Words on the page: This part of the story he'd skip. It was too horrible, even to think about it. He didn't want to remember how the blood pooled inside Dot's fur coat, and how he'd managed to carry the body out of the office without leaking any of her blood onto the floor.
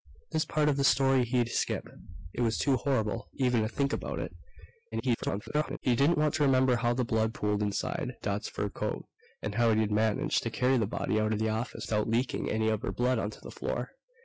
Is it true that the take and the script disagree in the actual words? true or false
true